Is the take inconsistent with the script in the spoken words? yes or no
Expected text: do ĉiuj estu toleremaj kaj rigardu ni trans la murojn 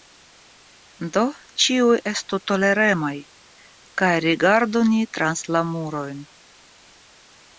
no